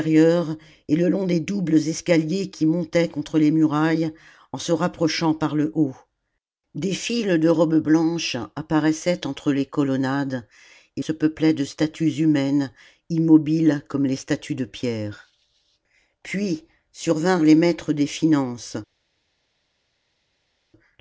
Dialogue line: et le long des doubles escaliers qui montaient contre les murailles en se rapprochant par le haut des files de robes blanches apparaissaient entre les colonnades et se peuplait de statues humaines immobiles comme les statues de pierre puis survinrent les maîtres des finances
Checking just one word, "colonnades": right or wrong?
right